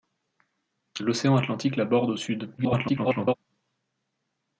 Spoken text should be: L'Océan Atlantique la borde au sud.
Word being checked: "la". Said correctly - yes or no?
yes